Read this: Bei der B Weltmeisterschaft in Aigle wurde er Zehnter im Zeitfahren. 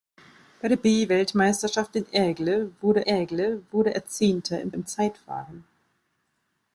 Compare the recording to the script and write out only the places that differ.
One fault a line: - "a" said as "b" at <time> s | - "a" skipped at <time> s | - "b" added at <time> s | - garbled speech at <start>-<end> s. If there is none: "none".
- "Aigle wurde" added at 3.1 s
- "im" added at 4.7 s